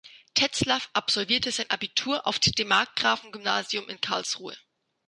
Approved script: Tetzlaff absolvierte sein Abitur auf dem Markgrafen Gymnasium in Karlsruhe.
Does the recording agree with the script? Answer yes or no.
yes